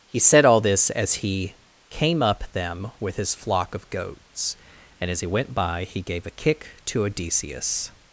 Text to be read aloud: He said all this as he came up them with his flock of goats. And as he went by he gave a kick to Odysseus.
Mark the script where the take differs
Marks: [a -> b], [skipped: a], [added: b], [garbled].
He said all this as he came up them with his flock of goats. And as he went by he gave a kick to Odysseus.